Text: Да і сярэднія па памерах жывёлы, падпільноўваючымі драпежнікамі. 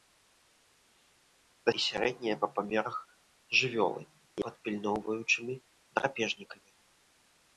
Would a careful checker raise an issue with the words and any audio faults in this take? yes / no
no